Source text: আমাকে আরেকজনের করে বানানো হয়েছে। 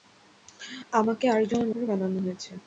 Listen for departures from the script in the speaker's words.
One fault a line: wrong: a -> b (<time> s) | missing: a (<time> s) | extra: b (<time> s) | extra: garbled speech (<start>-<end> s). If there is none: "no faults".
no faults